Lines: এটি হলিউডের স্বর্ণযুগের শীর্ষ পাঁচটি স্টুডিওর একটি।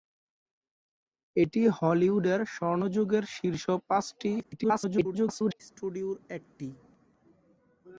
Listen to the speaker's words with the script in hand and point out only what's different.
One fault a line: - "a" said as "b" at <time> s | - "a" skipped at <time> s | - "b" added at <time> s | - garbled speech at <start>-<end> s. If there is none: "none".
- garbled speech at 4.4-5.6 s